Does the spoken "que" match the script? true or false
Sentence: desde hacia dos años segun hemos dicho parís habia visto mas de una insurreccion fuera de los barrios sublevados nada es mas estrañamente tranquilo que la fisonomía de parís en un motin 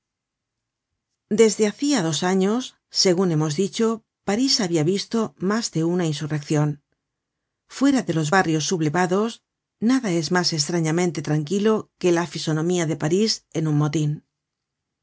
true